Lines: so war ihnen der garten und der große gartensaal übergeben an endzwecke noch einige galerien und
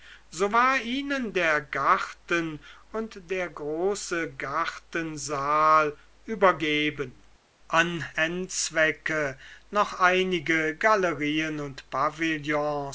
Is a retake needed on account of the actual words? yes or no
no